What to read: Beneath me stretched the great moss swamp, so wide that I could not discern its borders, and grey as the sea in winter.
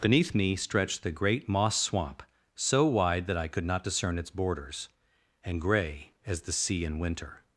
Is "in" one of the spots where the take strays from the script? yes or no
no